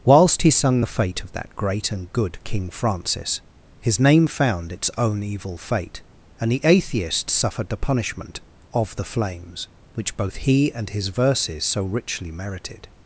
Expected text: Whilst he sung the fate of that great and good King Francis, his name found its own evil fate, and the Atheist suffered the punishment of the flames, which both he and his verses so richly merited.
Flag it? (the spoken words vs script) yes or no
no